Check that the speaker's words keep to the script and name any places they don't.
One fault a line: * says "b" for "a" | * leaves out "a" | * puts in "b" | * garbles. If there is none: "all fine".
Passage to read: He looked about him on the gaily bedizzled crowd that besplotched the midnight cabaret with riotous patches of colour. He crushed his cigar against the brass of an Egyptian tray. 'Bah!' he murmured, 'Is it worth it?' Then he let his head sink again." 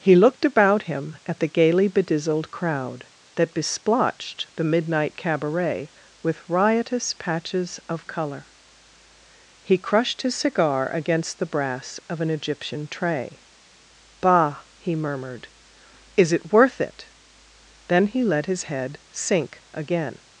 * says "at" for "on"